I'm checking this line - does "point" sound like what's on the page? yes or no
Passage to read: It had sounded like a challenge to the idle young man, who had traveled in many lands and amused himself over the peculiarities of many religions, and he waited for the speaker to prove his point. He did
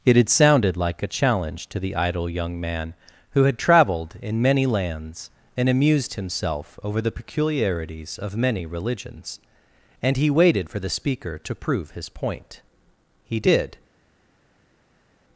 yes